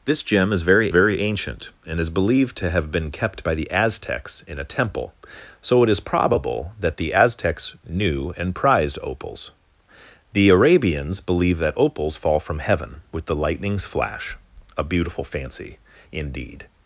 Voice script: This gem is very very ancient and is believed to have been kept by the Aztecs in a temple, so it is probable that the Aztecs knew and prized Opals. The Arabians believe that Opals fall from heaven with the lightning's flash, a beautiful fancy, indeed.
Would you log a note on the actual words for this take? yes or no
no